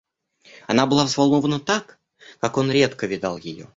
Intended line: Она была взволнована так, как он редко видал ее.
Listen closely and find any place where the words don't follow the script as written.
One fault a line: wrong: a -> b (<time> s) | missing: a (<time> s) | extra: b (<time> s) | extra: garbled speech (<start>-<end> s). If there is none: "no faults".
no faults